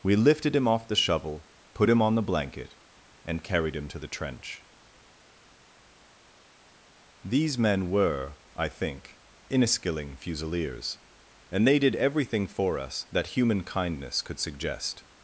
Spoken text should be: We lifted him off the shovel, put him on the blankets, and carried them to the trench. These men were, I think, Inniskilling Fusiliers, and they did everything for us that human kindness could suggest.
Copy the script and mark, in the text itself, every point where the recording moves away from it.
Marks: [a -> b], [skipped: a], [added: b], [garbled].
We lifted him off the shovel, put him on the [blankets, -> blanket] and carried [them -> him] to the trench. These men were, I think, Inniskilling Fusiliers, and they did everything for us that human kindness could suggest.